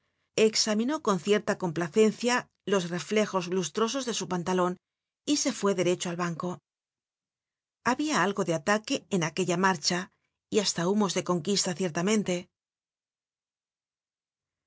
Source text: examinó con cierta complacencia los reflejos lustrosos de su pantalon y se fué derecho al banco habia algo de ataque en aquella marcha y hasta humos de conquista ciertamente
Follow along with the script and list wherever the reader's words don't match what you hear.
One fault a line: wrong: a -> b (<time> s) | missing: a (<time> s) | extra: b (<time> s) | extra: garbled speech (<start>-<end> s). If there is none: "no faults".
no faults